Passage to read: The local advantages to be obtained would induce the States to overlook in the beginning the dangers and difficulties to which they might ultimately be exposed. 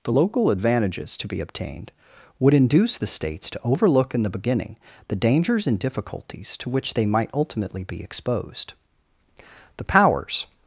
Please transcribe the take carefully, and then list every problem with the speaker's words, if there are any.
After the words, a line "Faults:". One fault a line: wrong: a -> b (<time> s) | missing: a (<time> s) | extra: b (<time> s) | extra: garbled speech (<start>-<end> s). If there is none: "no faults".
The local advantages to be obtained would induce the States to overlook in the beginning the dangers and difficulties to which they might ultimately be exposed. The powers
Faults:
extra: The powers (9.8 s)